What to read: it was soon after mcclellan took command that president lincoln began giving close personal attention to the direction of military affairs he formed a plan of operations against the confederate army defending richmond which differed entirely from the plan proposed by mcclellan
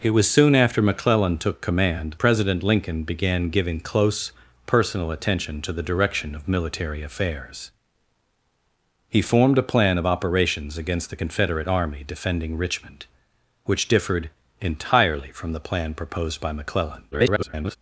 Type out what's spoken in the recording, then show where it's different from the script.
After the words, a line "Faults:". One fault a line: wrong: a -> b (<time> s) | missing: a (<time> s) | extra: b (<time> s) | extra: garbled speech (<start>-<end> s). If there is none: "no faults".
it was soon after mcclellan took command president lincoln began giving close personal attention to the direction of military affairs he formed a plan of operations against the confederate army defending richmond which differed entirely from the plan proposed by mcclellan [garbled]
Faults:
missing: that (2.1 s)
extra: garbled speech (17.1-17.8 s)